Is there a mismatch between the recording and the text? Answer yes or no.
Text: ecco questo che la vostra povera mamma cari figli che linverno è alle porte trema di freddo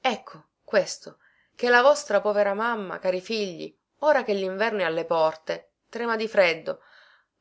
yes